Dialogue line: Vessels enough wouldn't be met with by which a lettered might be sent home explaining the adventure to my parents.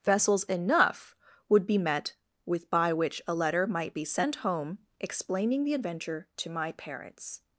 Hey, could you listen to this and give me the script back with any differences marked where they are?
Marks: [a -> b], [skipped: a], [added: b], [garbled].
Vessels enough [wouldn't -> would] be met with by which a [lettered -> letter] might be sent home explaining the adventure to my parents.